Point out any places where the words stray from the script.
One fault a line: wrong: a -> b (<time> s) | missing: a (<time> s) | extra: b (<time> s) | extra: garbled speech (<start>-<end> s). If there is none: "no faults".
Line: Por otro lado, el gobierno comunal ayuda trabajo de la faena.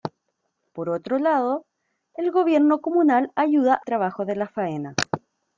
no faults